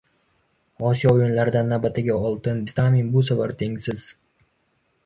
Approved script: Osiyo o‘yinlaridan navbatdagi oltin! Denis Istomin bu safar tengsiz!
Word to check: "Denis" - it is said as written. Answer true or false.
false